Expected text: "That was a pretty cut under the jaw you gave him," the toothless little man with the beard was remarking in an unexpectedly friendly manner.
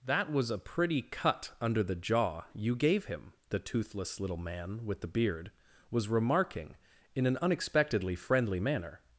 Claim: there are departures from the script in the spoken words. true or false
false